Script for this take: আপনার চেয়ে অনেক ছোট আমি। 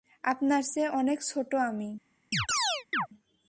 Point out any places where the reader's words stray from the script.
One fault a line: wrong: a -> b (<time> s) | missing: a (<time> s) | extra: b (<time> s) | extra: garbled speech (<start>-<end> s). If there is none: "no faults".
no faults